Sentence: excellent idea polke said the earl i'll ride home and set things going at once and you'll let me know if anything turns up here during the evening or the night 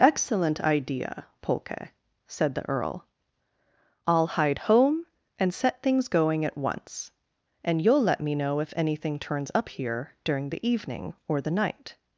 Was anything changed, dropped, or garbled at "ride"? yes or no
yes